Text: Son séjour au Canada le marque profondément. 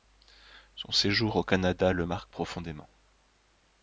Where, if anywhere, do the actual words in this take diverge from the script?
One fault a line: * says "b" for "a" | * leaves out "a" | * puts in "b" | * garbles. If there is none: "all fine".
all fine